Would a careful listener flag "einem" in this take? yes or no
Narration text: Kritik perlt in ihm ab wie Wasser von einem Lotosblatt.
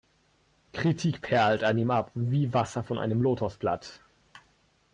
no